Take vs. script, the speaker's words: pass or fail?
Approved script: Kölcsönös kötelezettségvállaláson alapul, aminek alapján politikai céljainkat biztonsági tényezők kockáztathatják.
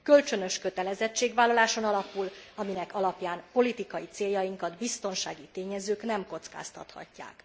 fail